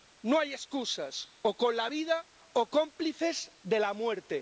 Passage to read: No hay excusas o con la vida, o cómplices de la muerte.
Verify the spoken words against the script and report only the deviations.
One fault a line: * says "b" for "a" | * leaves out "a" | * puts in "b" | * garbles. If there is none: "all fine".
all fine